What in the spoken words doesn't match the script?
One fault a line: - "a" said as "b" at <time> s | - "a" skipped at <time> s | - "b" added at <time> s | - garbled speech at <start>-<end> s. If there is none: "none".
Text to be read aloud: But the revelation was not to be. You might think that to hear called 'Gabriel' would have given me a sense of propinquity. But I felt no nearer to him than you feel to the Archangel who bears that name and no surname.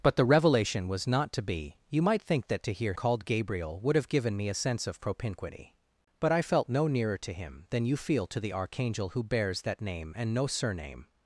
none